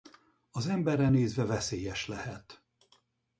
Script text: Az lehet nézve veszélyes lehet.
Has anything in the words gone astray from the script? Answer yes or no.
yes